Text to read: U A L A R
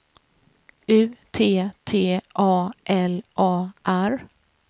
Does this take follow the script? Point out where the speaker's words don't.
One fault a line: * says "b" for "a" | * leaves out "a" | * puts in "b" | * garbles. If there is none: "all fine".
* puts in "T T"